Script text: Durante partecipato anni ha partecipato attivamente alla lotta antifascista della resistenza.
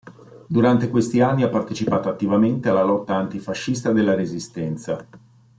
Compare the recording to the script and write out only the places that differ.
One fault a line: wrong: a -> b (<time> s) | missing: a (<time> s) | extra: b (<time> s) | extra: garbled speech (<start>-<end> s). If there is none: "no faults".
wrong: partecipato -> questi (0.9 s)